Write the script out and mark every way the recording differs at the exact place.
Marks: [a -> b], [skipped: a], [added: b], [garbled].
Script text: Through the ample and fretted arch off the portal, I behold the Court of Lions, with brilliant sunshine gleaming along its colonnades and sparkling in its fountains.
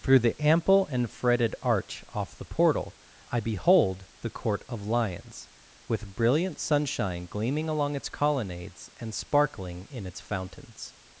Through the ample and fretted arch off the portal, I behold the Court of Lions, with brilliant sunshine gleaming along its colonnades and sparkling in its fountains.